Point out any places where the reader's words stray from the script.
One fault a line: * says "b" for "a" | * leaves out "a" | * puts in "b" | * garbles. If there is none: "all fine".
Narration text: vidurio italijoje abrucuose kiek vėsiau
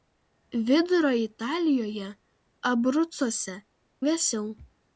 * leaves out "kiek"